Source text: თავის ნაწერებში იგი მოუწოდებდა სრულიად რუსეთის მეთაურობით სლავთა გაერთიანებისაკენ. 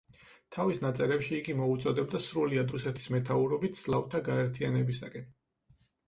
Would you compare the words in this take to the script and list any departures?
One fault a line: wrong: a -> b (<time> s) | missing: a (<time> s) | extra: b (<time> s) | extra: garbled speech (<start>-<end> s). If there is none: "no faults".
no faults